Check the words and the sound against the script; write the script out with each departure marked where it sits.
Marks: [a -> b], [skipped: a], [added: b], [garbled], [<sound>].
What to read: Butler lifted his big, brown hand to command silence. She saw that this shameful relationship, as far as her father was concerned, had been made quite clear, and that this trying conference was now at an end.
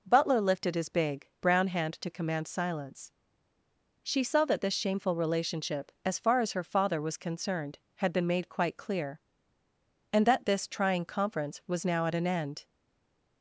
Butler lifted his big, brown hand to command silence. She saw that this shameful relationship, as far as her father was concerned, had been made quite clear, and that this trying conference was now at an end.